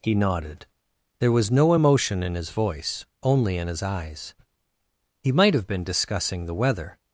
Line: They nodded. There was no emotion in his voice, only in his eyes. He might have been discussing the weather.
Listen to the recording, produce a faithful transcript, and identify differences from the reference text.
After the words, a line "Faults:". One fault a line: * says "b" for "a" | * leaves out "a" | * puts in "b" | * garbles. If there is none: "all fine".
He nodded. There was no emotion in his voice, only in his eyes. He might have been discussing the weather.
Faults:
* says "He" for "They"